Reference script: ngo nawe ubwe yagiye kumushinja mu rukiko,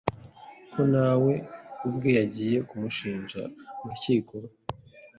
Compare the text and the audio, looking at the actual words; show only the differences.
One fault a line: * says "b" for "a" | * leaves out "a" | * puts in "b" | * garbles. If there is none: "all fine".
* says "ko" for "ngo"